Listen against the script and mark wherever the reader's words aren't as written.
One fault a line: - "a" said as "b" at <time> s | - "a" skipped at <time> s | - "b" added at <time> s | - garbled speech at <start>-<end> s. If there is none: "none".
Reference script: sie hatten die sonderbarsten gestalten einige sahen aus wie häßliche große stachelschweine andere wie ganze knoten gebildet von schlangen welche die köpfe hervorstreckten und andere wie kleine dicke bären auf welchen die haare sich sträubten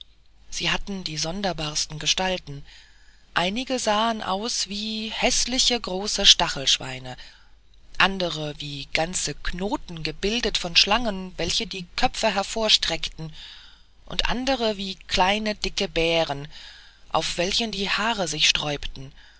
none